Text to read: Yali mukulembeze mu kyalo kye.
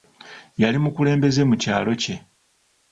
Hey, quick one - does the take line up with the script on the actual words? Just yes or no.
yes